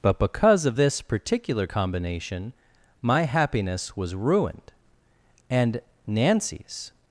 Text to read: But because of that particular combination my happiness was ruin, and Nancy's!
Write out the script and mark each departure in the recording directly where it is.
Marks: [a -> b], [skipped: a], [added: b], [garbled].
But because of [that -> this] particular combination my happiness was [ruin, -> ruined] and Nancy's!